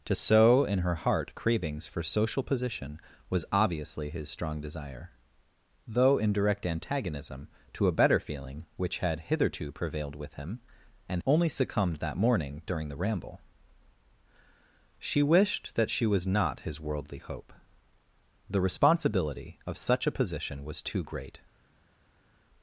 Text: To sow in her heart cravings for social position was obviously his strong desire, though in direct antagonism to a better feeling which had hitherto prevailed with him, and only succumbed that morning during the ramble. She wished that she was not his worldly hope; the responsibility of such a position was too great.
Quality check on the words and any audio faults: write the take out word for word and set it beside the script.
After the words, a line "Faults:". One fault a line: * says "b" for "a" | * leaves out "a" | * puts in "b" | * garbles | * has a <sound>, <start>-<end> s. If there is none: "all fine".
To sow in her heart cravings for social position was obviously his strong desire, though in direct antagonism to a better feeling which had hitherto prevailed with him, and only succumbed that morning during the ramble. She wished that she was not his worldly hope; the responsibility of such a position was too great.
Faults:
all fine